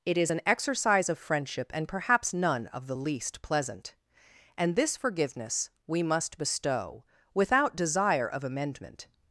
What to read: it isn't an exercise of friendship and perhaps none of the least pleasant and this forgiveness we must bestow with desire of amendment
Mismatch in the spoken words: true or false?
true